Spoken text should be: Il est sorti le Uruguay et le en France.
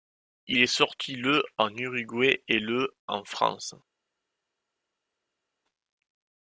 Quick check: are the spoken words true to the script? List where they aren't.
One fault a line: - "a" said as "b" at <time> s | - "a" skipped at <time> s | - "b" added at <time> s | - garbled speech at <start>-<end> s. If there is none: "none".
- "en" added at 1.6 s